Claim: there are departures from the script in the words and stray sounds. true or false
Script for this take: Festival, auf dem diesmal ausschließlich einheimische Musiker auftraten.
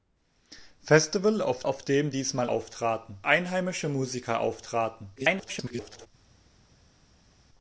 true